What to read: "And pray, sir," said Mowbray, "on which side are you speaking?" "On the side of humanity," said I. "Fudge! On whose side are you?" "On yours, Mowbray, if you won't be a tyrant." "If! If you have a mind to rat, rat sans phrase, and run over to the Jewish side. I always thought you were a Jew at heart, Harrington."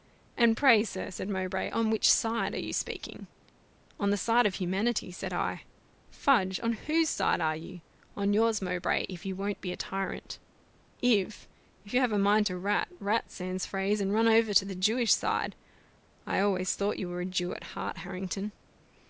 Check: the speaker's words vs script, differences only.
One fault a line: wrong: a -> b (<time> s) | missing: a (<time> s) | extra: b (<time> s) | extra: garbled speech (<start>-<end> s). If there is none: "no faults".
no faults